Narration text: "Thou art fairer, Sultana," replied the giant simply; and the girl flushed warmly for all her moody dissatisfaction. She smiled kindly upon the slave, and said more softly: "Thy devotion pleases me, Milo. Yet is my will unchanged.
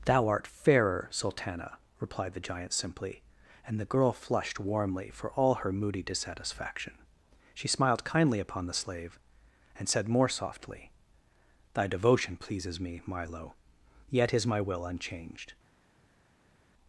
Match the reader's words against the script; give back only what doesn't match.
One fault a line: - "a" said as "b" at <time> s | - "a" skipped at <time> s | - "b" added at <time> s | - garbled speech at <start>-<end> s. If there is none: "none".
none